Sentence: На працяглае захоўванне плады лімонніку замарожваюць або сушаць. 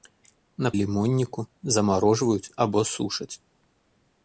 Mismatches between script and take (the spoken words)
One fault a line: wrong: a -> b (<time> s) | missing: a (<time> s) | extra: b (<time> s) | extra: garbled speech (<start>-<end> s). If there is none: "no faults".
missing: працяглае захоўванне плады (0.7 s)